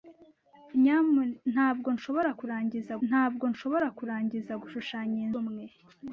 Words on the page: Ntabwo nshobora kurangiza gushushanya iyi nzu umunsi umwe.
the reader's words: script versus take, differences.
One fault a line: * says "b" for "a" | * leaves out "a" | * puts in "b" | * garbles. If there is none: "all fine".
* puts in "ntabwo nshobora kurangiza"
* leaves out "nzu umunsi"